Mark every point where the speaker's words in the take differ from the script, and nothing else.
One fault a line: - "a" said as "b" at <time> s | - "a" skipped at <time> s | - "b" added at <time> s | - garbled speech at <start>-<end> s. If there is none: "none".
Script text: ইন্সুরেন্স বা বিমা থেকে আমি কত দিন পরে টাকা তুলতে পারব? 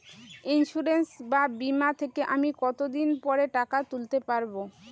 none